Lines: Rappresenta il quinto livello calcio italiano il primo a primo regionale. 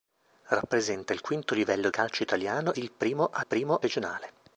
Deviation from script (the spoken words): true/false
false